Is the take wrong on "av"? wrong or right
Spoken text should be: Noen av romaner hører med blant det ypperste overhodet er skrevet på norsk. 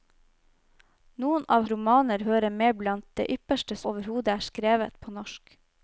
right